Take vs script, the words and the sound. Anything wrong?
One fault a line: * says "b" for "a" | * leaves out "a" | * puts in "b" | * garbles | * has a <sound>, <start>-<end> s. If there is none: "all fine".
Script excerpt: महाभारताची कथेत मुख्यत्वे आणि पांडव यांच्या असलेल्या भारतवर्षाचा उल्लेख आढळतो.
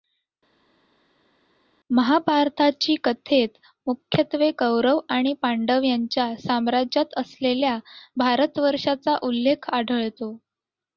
* puts in "कौरव"
* puts in "साम्राज्यात"